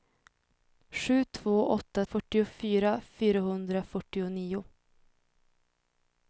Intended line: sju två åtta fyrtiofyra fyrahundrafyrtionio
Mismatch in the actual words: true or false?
false